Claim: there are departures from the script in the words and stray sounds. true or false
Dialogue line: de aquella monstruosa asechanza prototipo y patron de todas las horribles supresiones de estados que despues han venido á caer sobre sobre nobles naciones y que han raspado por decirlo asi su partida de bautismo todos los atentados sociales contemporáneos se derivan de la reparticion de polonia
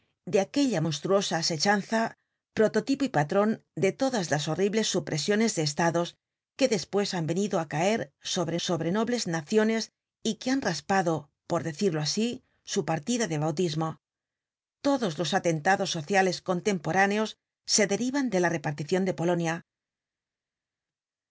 false